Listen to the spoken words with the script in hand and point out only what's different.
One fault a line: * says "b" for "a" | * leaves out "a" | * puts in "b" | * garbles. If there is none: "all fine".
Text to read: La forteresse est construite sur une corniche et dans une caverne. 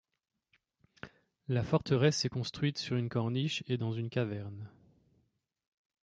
all fine